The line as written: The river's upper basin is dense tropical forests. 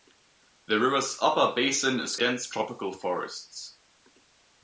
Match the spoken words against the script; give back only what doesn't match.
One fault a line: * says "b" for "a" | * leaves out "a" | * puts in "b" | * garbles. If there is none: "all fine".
all fine